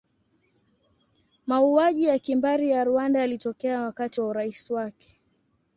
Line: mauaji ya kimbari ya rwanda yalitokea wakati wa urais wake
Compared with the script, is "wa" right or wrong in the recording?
right